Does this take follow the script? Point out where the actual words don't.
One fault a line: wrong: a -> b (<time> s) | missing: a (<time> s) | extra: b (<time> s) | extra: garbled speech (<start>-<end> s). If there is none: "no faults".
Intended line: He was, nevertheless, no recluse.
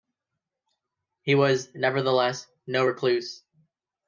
no faults